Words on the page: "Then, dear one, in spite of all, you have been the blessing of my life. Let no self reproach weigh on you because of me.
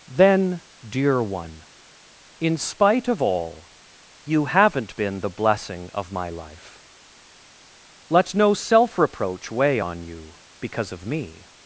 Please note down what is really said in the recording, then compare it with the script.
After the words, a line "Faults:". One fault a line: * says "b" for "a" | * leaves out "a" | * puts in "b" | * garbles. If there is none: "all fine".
"Then, dear one, in spite of all, you haven't been the blessing of my life. Let no self reproach weigh on you because of me.
Faults:
* says "haven't" for "have"